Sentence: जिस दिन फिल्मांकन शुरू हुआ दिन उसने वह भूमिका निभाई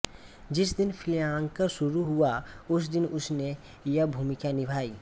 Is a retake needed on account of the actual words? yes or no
yes